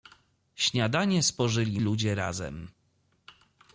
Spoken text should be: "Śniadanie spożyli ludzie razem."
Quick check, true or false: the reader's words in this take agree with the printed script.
true